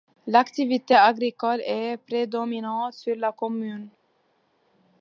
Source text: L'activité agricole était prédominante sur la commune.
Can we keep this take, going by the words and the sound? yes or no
no